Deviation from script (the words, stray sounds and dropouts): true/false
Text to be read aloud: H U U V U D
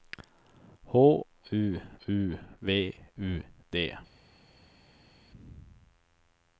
false